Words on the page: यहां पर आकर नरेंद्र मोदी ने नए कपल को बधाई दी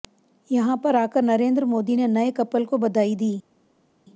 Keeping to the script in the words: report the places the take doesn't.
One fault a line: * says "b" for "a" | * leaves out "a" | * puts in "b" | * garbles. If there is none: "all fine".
all fine